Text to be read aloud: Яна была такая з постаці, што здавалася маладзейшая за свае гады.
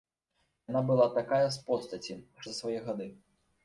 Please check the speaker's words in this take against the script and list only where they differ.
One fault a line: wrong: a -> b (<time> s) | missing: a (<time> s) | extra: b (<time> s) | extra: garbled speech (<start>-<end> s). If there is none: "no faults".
missing: што здавалася маладзейшая (2.2 s)